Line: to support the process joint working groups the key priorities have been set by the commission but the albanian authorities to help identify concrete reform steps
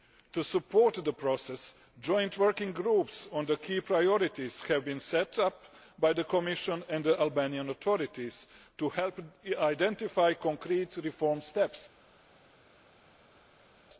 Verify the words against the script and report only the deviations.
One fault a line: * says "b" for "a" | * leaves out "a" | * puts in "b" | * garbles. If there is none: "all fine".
* puts in "on"
* puts in "up"
* says "and" for "but"